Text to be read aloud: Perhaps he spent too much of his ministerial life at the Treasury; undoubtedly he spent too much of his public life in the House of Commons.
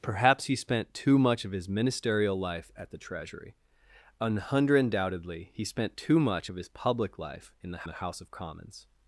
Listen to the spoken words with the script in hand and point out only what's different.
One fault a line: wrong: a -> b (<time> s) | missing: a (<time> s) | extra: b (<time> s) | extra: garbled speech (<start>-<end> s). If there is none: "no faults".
extra: the (7.9 s)